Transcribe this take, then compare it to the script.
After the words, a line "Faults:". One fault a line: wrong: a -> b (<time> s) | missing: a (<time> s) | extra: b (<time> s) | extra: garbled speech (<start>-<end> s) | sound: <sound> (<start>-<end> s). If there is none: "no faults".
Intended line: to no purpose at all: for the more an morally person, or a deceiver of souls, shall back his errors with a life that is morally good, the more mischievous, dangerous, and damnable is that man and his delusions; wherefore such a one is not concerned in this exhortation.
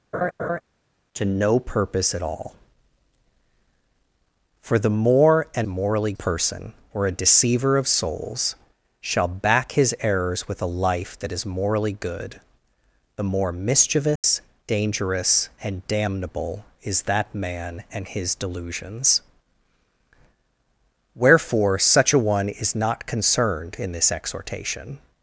to no purpose at all: for the more an morally person, or a deceiver of souls, shall back his errors with a life that is morally good, the more mischievous, dangerous, and damnable is that man and his delusions; wherefore such a one is not concerned in this exhortation.
Faults:
sound: laugh (0.1-0.6 s)
sound: dropout (14.2-14.2 s)